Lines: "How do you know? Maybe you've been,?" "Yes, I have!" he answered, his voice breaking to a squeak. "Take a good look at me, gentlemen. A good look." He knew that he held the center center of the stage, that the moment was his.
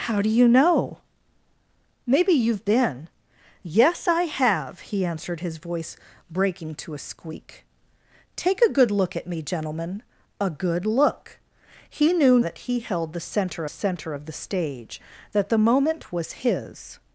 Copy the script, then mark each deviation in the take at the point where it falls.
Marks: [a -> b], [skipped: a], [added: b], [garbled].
"How do you know? Maybe you've been,?" "Yes, I have!" he answered, his voice breaking to a squeak. "Take a good look at me, gentlemen. A good look." He knew that he held the center center of the stage, that the moment was his.